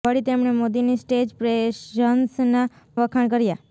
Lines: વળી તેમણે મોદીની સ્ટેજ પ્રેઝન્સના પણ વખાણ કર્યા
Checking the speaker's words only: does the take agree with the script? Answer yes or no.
no